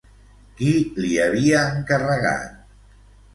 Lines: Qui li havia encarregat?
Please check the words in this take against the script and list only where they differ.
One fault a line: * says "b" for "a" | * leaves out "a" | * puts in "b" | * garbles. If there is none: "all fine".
all fine